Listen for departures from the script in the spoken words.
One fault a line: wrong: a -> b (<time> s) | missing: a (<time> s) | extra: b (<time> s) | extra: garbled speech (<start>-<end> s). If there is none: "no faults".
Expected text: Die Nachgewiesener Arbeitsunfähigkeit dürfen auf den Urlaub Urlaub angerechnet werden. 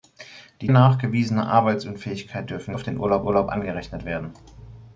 no faults